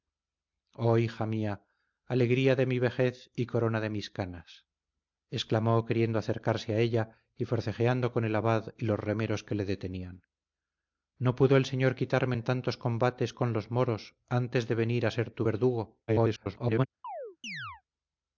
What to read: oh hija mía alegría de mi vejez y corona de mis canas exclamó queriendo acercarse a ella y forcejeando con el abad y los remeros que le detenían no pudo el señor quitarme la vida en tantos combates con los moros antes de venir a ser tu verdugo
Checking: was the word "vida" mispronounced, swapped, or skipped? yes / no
yes